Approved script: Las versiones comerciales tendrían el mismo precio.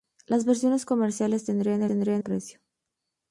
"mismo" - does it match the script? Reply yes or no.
no